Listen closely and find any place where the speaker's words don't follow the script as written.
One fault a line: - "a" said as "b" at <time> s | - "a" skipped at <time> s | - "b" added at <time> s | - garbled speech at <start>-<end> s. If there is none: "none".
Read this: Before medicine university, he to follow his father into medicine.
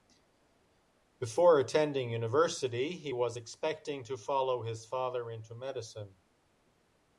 - "medicine" said as "attending" at 1.6 s
- "was expecting" added at 3.1 s